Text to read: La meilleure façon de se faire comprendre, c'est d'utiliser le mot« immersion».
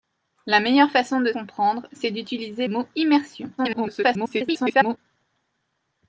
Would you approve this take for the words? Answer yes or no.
no